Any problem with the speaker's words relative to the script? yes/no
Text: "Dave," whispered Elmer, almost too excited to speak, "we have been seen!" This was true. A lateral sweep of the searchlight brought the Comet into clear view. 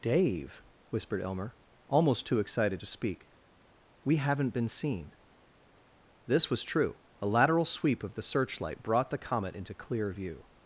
yes